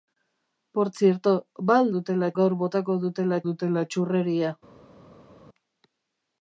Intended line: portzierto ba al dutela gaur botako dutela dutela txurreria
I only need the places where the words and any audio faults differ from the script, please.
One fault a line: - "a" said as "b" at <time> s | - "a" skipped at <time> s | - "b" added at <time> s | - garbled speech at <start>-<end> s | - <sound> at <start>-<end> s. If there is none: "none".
none